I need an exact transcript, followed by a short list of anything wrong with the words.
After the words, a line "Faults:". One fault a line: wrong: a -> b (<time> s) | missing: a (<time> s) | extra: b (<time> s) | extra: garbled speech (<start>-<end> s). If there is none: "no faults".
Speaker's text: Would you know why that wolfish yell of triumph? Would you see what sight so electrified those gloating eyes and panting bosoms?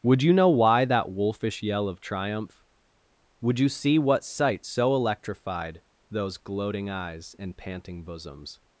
Would you know why that wolfish yell of triumph? Would you see what sight so electrified those gloating eyes and panting bosoms?
Faults:
no faults